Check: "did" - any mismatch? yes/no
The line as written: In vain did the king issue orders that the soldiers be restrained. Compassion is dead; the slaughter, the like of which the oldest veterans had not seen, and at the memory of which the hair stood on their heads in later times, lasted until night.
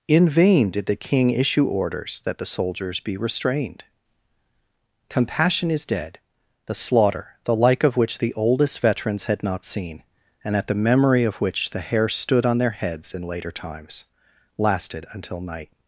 no